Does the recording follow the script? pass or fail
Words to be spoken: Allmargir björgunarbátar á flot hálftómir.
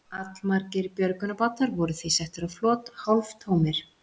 fail